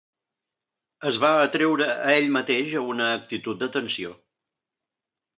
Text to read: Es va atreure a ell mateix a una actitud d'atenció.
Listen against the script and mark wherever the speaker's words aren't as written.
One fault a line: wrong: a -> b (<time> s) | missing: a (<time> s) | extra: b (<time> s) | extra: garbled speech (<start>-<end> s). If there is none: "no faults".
no faults